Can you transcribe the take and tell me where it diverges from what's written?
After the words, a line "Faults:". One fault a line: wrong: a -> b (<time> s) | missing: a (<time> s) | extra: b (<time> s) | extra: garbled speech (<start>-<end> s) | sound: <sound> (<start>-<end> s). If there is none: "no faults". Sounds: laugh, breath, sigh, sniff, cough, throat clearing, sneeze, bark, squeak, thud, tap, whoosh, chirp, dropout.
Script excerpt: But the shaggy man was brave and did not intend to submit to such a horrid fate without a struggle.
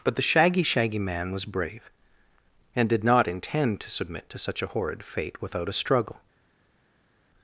But the shaggy shaggy man was brave and did not intend to submit to such a horrid fate without a struggle.
Faults:
extra: shaggy (0.6 s)